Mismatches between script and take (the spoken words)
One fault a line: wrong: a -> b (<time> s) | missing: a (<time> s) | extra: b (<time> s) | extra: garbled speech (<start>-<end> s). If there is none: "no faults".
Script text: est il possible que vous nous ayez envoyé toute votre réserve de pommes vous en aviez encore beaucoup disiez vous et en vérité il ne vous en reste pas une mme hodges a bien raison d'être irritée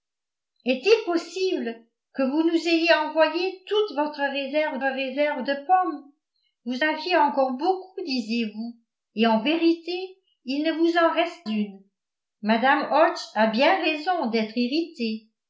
extra: réserve (4.8 s)
missing: en (6.8 s)
missing: pas (11.5 s)